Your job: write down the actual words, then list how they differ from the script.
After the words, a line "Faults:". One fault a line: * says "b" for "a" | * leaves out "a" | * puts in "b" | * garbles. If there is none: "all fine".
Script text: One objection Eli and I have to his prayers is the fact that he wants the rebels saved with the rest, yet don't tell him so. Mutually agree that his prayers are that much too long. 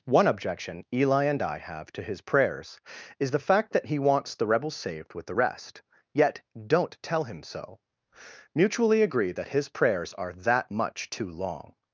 One objection Eli and I have to his prayers is the fact that he wants the rebels saved with the rest, yet don't tell him so. Mutually agree that his prayers are that much too long.
Faults:
all fine